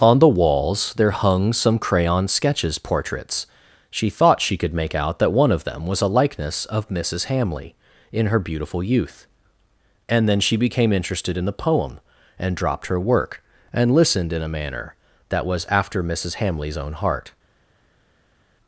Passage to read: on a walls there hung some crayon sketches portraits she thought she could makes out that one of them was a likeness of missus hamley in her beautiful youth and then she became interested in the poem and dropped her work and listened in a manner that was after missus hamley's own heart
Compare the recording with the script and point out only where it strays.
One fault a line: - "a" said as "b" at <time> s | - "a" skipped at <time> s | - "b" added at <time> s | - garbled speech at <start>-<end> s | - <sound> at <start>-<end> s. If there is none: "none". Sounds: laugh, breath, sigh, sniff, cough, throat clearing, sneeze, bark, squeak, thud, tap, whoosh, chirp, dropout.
- "a" said as "the" at 0.2 s
- "makes" said as "make" at 4.7 s